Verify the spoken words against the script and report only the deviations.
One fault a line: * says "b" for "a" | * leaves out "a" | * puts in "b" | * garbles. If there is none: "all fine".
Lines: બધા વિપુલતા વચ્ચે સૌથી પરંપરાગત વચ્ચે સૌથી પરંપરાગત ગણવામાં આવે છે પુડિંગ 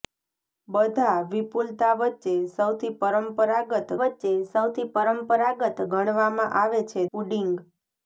all fine